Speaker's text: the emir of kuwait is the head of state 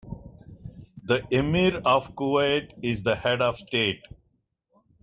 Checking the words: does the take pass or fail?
pass